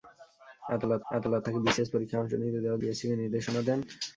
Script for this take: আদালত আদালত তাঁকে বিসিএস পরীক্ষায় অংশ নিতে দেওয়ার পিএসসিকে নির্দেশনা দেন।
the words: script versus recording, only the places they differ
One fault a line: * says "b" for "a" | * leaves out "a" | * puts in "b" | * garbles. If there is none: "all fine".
all fine